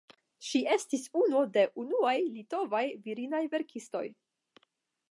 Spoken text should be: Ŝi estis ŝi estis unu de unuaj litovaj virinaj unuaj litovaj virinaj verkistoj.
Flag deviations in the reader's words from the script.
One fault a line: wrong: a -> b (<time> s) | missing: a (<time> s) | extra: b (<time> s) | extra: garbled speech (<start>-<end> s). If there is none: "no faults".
missing: ŝi estis (1.0 s)
missing: unuaj litovaj virinaj (3.5 s)